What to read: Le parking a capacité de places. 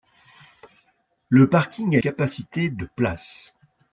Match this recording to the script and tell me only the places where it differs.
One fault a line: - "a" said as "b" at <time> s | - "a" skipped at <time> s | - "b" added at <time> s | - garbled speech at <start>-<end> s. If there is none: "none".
none